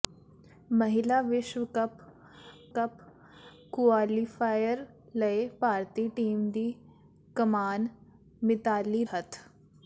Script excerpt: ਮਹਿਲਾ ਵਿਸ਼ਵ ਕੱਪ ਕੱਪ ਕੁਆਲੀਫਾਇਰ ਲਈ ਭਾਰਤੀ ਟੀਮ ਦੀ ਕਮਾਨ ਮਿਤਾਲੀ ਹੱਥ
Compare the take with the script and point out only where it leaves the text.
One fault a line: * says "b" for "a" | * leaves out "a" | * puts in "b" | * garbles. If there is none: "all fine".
all fine